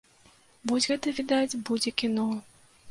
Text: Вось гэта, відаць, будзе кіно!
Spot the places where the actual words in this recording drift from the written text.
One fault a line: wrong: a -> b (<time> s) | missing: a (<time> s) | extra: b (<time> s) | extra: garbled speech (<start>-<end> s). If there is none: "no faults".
no faults